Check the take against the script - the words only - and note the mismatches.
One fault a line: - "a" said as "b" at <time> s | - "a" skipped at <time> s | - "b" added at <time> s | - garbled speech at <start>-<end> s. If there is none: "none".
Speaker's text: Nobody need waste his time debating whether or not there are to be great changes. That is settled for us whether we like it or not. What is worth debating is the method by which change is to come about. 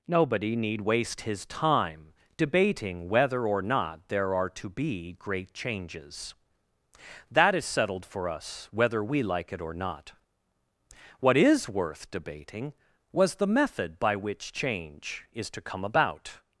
- "is" said as "was" at 13.1 s